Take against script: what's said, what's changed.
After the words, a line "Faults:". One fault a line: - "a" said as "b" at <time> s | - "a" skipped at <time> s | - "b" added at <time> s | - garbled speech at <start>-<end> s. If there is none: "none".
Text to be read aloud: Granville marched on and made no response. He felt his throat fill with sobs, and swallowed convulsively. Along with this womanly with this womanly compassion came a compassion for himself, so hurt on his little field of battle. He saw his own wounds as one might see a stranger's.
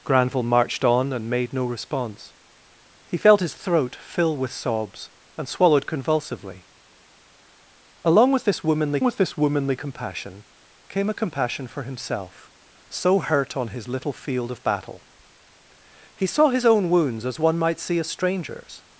Granville marched on and made no response. He felt his throat fill with sobs, and swallowed convulsively. Along with this womanly with this womanly compassion came a compassion for himself, so hurt on his little field of battle. He saw his own wounds as one might see a stranger's.
Faults:
none